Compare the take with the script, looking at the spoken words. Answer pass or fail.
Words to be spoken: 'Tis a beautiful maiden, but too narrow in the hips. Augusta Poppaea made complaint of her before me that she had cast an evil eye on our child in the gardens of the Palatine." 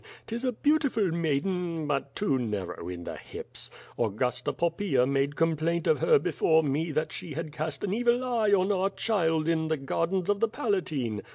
pass